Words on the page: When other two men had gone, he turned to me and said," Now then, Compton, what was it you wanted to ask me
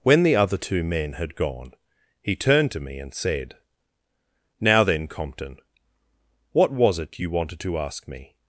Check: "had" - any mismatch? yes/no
no